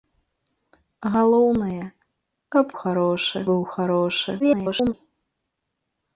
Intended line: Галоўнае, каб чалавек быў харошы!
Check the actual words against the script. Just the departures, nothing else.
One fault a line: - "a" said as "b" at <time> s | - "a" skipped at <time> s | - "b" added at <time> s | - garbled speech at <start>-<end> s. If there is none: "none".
- "чалавек" said as "харошы" at 2.8 s
- garbled speech at 4.4-4.9 s